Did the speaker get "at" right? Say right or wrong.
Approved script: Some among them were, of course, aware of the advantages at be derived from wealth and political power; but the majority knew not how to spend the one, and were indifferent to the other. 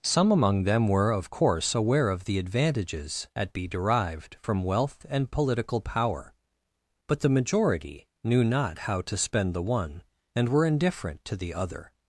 right